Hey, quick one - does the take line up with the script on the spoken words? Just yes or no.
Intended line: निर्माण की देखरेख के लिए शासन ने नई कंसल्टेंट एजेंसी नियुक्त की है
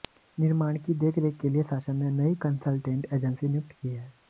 yes